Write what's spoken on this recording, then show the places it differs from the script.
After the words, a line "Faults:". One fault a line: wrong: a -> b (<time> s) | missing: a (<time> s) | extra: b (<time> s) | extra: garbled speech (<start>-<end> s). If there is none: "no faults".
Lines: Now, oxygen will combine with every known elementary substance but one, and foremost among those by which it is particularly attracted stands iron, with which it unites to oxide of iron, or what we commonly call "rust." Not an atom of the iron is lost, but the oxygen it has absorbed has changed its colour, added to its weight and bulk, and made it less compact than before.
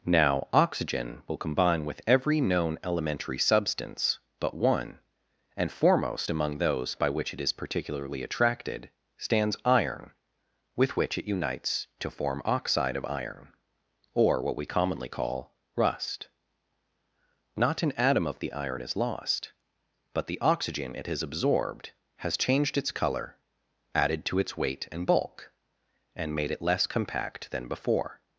Now, oxygen will combine with every known elementary substance but one, and foremost among those by which it is particularly attracted stands iron, with which it unites to form oxide of iron, or what we commonly call "rust." Not an atom of the iron is lost, but the oxygen it has absorbed has changed its colour, added to its weight and bulk, and made it less compact than before.
Faults:
extra: form (12.1 s)